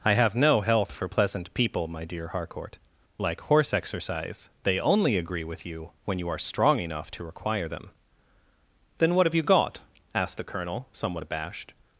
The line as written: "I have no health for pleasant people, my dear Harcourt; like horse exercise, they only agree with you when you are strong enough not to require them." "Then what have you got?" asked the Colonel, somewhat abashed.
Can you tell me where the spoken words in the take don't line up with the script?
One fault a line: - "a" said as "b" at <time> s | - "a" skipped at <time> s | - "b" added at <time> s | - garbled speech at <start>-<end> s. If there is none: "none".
- "not" skipped at 7.1 s